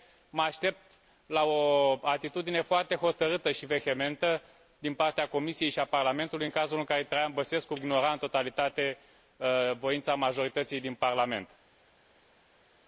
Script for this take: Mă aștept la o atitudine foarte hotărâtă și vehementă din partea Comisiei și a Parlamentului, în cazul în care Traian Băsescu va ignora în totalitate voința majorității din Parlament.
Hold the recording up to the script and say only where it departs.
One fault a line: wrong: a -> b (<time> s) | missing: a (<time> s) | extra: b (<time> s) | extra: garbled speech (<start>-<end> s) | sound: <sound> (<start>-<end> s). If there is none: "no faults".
missing: va (7.7 s)